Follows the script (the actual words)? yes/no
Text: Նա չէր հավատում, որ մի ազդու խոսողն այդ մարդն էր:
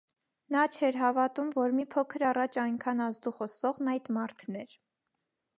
no